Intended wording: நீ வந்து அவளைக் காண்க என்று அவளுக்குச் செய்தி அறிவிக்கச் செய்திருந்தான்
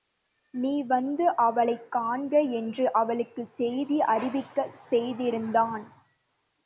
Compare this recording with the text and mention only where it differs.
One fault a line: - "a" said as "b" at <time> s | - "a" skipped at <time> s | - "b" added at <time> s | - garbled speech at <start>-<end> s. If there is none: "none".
none